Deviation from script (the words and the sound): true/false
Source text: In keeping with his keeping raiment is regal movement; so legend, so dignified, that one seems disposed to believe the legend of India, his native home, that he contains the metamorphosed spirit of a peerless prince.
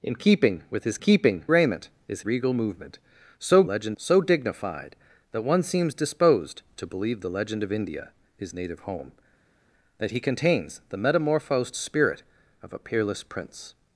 false